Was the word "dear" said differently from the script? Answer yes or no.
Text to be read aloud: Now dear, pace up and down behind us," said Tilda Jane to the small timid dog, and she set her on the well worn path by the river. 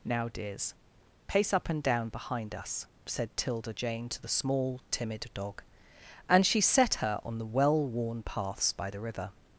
yes